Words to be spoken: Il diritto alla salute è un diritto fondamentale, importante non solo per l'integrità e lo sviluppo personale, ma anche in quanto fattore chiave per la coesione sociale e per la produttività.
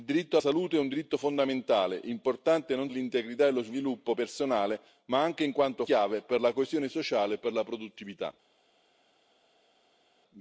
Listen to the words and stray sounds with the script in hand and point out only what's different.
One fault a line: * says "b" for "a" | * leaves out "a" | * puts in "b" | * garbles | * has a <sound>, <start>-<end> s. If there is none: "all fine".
* leaves out "alla"
* leaves out "solo per"
* leaves out "fattore"